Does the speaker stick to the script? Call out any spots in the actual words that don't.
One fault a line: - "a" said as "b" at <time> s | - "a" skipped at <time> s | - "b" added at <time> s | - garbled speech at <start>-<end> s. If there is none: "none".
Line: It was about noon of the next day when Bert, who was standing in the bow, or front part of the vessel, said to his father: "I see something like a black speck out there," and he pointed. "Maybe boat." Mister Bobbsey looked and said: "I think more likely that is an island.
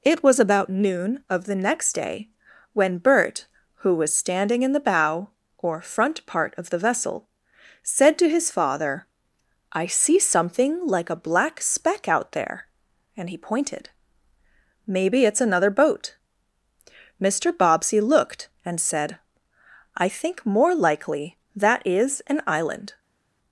- "it's another" added at 15.2 s